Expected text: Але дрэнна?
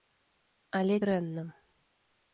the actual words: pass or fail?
pass